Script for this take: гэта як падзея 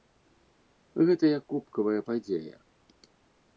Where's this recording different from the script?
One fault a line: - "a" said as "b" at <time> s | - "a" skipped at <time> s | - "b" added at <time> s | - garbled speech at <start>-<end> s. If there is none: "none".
- "кубкавая" added at 1.5 s